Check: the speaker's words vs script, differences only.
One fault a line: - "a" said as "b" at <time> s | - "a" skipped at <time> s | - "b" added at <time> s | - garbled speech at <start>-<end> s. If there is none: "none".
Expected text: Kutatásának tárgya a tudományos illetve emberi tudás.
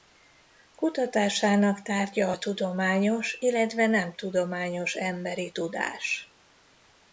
- "nem tudományos" added at 3.9 s